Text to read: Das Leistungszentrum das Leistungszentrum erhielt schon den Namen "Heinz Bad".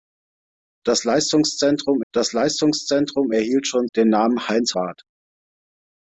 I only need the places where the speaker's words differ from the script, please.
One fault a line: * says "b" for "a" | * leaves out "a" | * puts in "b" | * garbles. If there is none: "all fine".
all fine